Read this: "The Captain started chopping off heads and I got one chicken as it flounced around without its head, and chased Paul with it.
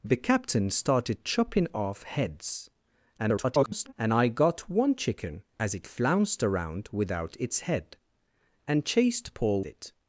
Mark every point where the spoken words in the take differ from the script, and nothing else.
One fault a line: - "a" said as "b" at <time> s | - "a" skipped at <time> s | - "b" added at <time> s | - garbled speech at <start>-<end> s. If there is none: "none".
- garbled speech at 3.2-3.9 s
- "with" skipped at 9.6 s